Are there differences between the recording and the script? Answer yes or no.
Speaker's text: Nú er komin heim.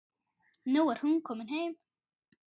yes